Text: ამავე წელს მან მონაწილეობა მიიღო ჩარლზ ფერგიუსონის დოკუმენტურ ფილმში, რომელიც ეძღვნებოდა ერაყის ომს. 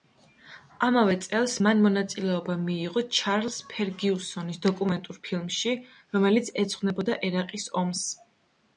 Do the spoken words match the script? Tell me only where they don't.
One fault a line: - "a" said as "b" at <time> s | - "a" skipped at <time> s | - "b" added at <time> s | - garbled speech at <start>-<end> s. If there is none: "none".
none